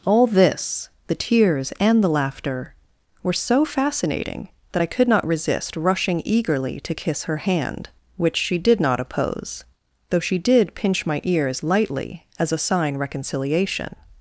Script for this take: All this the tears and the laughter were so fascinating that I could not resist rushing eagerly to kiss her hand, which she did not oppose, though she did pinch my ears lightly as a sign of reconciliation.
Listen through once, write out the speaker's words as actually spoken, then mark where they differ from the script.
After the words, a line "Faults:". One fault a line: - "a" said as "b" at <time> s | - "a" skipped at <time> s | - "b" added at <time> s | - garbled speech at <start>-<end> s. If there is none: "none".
All this the tears and the laughter were so fascinating that I could not resist rushing eagerly to kiss her hand, which she did not oppose, though she did pinch my ears lightly as a sign reconciliation.
Faults:
- "of" skipped at 13.0 s